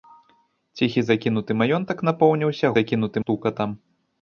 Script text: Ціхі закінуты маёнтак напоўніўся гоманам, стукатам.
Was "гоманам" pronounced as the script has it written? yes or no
no